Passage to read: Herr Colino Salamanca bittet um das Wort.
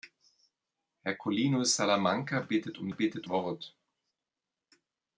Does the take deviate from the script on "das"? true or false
true